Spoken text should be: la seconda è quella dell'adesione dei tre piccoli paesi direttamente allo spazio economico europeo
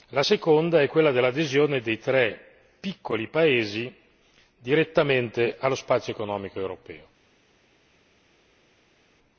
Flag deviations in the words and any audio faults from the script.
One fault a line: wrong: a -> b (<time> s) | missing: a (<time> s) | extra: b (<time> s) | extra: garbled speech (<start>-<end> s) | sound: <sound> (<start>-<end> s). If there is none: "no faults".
no faults